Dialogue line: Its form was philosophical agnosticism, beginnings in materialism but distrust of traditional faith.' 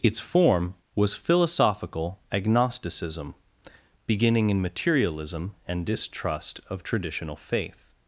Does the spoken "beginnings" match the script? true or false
false